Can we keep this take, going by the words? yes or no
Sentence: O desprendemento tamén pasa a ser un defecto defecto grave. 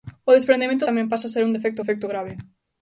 yes